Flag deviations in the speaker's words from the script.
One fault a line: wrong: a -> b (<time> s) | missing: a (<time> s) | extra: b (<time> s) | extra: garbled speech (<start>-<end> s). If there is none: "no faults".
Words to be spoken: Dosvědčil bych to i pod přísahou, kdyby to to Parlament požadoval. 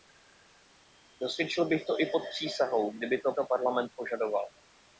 no faults